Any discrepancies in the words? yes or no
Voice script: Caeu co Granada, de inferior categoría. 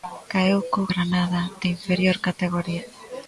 no